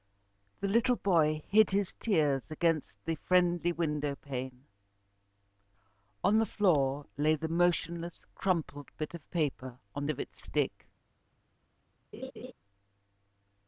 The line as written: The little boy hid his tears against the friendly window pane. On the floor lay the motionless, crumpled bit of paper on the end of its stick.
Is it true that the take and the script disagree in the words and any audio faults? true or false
true